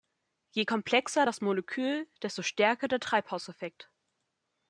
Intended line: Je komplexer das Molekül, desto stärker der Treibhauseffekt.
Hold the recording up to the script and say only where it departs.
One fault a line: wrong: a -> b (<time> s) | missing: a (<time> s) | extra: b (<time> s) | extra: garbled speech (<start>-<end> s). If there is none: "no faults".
no faults